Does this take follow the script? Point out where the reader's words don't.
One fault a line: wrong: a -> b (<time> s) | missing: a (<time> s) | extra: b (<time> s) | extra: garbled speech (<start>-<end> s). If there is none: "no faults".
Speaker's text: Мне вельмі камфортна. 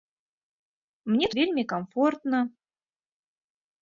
no faults